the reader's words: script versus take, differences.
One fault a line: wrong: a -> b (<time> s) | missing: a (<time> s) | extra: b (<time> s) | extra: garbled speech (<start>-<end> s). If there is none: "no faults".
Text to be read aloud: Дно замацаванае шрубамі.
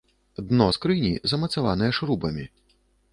extra: скрыні (0.7 s)